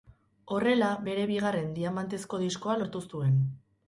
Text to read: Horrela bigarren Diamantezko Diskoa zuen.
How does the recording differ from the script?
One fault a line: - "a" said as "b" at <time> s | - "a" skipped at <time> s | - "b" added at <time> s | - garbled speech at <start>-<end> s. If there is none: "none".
- "bere" added at 1.1 s
- "lortu" added at 2.8 s